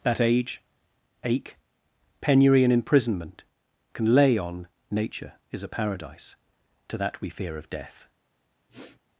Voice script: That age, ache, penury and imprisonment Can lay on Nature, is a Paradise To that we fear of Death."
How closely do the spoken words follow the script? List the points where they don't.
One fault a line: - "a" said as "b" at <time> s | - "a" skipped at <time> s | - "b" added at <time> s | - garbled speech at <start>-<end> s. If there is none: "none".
none